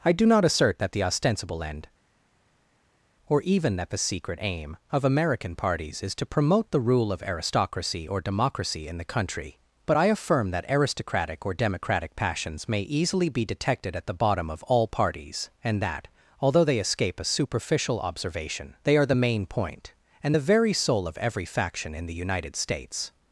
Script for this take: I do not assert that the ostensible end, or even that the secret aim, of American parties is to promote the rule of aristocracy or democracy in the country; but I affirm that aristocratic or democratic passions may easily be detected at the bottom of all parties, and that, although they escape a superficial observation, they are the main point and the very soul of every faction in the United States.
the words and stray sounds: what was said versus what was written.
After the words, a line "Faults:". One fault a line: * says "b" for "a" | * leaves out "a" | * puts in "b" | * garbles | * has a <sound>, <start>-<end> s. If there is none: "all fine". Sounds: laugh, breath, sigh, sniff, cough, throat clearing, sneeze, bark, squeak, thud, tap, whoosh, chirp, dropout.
I do not assert that the ostensible end, or even that the secret aim, of American parties is to promote the rule of aristocracy or democracy in the country; but I affirm that aristocratic or democratic passions may easily be detected at the bottom of all parties, and that, although they escape a superficial observation, they are the main point and the very soul of every faction in the United States.
Faults:
all fine